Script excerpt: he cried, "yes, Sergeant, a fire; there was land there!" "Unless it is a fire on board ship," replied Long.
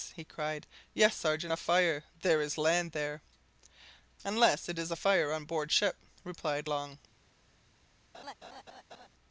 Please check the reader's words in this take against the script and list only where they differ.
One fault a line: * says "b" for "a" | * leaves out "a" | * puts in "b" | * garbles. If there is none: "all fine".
* says "is" for "was"